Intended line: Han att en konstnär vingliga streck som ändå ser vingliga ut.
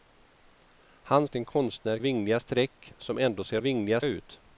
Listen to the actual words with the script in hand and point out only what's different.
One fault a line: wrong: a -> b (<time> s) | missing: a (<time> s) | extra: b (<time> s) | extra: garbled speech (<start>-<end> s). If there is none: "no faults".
no faults